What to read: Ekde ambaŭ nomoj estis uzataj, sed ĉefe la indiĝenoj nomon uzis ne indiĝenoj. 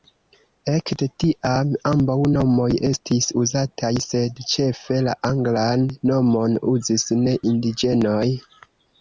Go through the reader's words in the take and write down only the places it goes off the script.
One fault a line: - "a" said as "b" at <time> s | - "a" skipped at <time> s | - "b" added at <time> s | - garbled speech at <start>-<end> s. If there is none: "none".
- "tiam" added at 1.2 s
- "indiĝenoj" said as "anglan" at 5.3 s